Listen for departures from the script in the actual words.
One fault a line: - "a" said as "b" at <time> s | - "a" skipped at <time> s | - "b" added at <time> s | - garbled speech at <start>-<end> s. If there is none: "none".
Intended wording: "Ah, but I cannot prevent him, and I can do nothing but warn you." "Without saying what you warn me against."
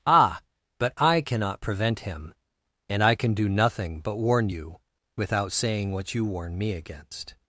none